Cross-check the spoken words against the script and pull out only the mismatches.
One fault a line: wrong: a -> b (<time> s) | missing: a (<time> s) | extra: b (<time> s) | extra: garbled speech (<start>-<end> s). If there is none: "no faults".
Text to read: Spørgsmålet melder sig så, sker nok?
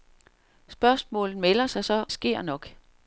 no faults